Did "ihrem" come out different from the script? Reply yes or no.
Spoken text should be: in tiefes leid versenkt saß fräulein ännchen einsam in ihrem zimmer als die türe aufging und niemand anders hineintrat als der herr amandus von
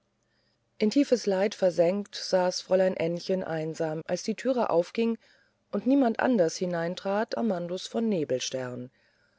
yes